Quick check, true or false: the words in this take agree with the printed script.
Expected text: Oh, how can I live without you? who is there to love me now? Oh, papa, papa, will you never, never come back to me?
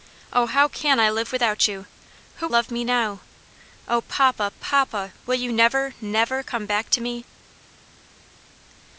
false